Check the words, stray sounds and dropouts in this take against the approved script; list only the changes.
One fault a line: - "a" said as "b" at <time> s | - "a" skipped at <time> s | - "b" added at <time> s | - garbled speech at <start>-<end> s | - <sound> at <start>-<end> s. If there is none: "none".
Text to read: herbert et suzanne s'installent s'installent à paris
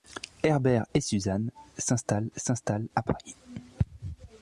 none